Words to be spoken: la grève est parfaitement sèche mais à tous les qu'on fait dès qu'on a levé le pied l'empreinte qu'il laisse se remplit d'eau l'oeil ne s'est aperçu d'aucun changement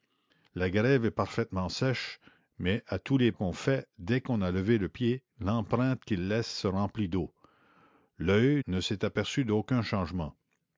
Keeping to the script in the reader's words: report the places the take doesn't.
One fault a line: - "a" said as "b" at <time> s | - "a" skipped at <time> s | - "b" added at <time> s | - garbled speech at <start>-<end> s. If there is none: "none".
none